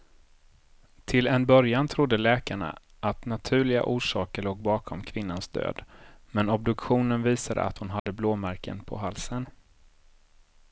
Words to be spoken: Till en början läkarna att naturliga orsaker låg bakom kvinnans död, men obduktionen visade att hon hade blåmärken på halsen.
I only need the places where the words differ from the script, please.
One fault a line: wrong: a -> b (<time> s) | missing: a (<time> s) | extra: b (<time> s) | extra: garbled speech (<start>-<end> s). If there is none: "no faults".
extra: trodde (1.9 s)